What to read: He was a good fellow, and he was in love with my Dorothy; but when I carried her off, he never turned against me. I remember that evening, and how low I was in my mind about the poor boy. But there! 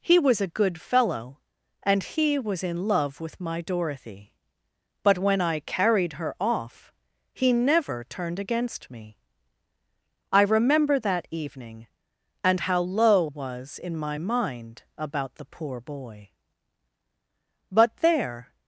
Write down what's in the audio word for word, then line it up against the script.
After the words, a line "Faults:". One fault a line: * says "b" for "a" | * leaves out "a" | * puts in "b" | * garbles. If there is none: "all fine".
He was a good fellow, and he was in love with my Dorothy; but when I carried her off, he never turned against me. I remember that evening, and how low was in my mind about the poor boy. But there!
Faults:
* leaves out "I"